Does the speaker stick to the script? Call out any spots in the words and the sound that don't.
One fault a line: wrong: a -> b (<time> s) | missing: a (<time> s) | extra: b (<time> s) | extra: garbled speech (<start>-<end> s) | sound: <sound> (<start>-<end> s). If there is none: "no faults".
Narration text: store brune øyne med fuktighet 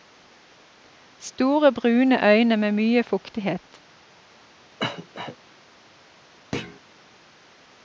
extra: mye (2.7 s)
sound: cough (4.8-5.4 s)
sound: thud (6.5-6.8 s)